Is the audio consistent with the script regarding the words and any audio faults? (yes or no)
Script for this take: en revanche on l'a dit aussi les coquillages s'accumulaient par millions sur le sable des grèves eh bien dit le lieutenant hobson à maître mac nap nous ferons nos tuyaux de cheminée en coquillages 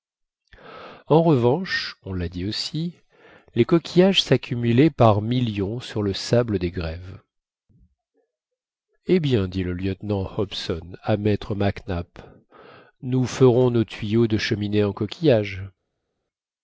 yes